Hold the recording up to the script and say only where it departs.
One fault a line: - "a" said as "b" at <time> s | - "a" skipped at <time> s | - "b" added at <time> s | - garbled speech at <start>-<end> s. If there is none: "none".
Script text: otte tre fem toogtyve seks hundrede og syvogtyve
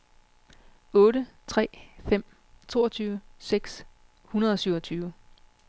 none